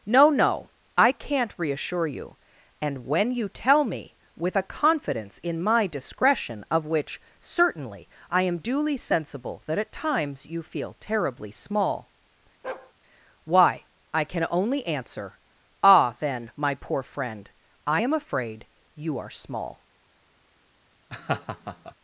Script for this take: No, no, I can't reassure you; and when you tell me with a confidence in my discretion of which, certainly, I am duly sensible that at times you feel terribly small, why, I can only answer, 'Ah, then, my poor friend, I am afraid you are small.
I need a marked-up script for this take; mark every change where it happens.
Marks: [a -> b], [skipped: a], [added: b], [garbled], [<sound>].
No, no, I can't reassure you; and when you tell me with a confidence in my discretion of which, certainly, I am duly sensible that at times you feel terribly small, [bark] why, I can only answer, 'Ah, then, my poor friend, I am afraid you are small. [laugh]